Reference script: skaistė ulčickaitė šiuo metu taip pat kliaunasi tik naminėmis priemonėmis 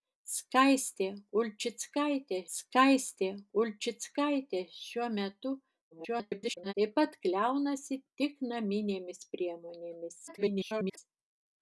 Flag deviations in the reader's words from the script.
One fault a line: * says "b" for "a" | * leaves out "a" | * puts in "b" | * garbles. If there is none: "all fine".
* puts in "skaistė ulčickaitė"
* garbles
* garbles